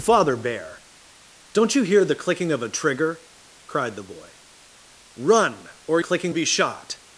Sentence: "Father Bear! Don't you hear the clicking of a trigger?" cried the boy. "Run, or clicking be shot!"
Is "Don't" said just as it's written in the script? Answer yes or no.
yes